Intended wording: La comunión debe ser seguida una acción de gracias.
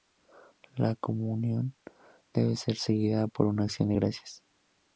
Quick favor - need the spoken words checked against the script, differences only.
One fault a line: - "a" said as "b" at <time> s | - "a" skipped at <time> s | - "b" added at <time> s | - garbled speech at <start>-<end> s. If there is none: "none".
- "por" added at 3.3 s